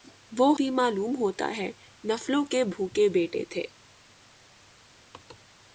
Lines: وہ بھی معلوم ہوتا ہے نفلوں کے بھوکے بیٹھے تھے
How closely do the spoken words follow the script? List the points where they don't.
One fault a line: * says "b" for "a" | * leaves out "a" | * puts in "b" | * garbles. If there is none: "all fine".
all fine